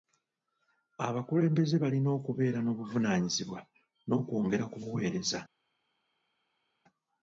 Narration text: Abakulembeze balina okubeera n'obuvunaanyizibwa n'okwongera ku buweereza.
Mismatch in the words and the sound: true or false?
false